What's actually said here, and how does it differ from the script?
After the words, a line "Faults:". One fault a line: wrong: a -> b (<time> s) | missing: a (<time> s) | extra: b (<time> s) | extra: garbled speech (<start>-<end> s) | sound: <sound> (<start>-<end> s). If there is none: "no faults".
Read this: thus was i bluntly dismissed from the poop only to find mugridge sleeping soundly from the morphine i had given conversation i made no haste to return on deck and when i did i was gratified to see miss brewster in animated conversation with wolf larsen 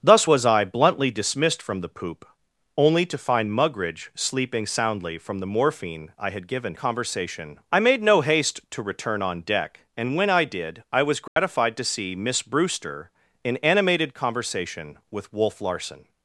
thus was i bluntly dismissed from the poop only to find mugridge sleeping soundly from the morphine i had given conversation i made no haste to return on deck and when i did i was gratified to see miss brewster in animated conversation with wolf larsen
Faults:
sound: dropout (11.3-11.4 s)